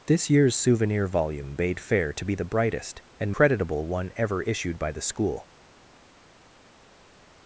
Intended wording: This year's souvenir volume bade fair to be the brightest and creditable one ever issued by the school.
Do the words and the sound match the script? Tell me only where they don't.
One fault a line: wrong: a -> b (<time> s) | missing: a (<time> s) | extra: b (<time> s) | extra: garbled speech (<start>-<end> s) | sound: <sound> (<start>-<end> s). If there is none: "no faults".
no faults